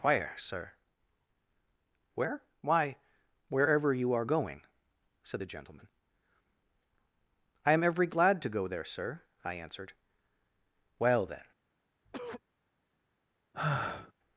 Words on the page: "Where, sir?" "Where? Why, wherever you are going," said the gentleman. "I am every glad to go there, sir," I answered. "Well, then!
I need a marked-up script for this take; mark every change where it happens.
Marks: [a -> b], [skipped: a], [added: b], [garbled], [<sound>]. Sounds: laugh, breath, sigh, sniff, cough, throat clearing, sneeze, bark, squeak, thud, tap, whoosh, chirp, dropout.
"Where, sir?" "Where? Why, wherever you are going," said the gentleman. "I am every glad to go there, sir," I answered. "Well, then! [cough] [sigh]